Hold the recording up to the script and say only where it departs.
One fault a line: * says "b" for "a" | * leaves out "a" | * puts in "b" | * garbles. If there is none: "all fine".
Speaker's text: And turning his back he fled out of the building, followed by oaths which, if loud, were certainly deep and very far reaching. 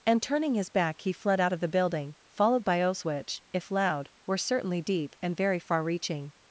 all fine